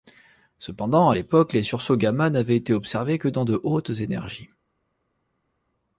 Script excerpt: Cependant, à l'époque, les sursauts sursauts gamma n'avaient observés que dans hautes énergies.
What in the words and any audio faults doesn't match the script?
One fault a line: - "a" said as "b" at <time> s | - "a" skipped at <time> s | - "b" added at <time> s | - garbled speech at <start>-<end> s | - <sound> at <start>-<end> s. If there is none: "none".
- "sursauts" skipped at 2.0 s
- "été" added at 2.5 s
- "de" added at 3.4 s